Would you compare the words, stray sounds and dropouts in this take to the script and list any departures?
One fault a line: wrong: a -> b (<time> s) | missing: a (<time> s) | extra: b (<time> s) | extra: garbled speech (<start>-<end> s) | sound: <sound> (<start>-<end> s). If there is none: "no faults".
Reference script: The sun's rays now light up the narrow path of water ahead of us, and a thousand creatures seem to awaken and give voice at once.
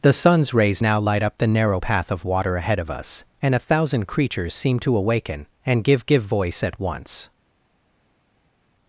extra: give (6.0 s)